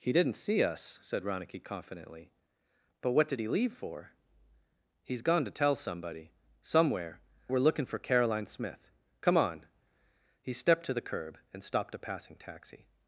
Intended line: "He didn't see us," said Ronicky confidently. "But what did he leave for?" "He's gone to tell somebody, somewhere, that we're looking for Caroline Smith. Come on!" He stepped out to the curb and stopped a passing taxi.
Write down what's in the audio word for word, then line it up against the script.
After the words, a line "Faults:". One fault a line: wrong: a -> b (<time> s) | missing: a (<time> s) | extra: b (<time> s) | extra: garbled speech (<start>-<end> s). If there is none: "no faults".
"He didn't see us," said Ronicky confidently. "But what did he leave for?" "He's gone to tell somebody, somewhere, we're looking for Caroline Smith. Come on!" He stepped to the curb and stopped a passing taxi.
Faults:
missing: that (7.2 s)
missing: out (10.9 s)